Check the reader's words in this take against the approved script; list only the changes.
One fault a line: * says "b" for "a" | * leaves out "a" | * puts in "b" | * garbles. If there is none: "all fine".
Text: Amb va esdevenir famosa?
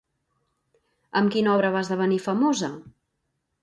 * puts in "quina obra"